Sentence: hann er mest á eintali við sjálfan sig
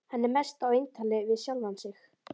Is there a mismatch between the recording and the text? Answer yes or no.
no